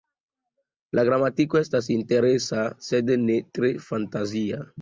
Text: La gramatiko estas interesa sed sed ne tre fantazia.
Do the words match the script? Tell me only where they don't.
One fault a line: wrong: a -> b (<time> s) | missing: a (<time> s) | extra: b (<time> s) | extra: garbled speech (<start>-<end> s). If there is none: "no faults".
missing: sed (3.1 s)